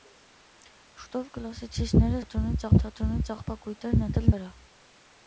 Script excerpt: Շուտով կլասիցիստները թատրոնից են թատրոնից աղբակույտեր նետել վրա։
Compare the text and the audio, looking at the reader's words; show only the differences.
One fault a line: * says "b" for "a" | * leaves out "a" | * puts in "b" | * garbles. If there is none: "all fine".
all fine